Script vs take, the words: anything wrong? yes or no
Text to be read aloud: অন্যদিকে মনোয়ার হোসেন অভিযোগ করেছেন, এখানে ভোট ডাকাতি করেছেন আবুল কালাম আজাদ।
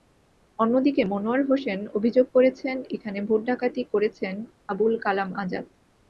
no